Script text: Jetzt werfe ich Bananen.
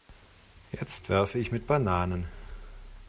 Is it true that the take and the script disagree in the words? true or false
true